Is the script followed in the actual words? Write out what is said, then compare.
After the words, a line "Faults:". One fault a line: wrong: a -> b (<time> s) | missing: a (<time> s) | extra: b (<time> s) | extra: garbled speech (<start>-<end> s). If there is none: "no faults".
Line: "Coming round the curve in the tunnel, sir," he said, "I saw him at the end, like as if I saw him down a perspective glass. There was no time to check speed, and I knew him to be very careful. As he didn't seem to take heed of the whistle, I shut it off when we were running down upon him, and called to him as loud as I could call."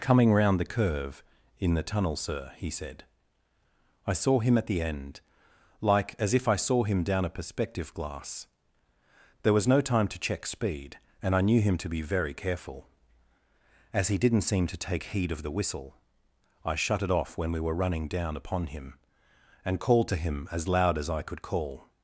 "Coming round the curve in the tunnel, sir," he said, "I saw him at the end, like as if I saw him down a perspective glass. There was no time to check speed, and I knew him to be very careful. As he didn't seem to take heed of the whistle, I shut it off when we were running down upon him, and called to him as loud as I could call."
Faults:
no faults